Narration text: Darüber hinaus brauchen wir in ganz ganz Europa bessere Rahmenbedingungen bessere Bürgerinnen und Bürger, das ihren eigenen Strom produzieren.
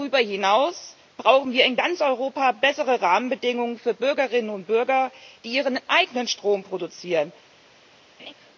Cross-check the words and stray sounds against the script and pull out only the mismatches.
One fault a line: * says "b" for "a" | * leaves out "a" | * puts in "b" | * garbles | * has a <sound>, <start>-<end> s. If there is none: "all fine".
* leaves out "ganz"
* says "für" for "bessere"
* says "die" for "das"
* has a laugh, 8.2-8.3 s